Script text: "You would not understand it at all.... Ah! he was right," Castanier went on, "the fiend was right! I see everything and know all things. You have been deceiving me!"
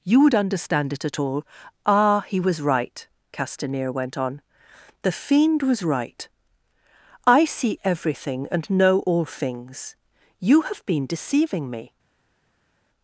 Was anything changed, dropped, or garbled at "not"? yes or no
yes